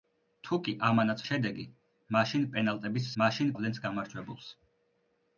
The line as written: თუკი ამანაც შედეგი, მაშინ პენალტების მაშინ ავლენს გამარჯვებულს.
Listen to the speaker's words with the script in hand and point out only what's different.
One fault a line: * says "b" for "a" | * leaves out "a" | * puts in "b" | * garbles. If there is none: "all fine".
all fine